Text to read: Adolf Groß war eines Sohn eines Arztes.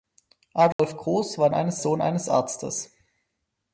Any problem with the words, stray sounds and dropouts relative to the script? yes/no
yes